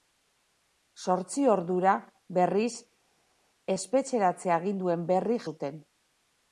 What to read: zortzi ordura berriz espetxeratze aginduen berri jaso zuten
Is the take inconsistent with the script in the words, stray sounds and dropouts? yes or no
yes